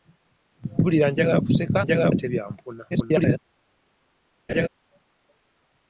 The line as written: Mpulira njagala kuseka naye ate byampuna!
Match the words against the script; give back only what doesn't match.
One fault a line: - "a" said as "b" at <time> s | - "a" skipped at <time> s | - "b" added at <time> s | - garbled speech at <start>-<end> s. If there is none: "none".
- "naye" said as "njagala" at 1.8 s
- garbled speech at 2.9-3.4 s